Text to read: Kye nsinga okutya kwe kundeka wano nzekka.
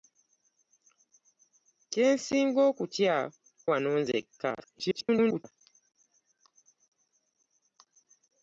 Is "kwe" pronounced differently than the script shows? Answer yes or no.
yes